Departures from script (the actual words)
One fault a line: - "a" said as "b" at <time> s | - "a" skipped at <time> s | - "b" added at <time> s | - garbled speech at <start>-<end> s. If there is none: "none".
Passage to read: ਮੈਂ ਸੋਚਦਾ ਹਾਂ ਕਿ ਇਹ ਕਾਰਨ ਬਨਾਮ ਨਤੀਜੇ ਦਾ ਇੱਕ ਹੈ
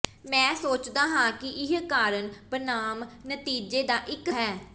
none